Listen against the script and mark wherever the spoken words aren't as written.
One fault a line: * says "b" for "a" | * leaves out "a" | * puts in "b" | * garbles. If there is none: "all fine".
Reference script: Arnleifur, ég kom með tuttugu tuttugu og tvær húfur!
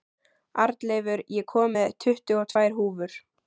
* leaves out "tuttugu"